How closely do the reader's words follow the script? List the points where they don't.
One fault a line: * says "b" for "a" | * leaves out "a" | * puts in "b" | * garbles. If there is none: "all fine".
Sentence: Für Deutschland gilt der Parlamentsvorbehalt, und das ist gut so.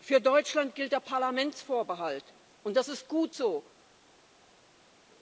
all fine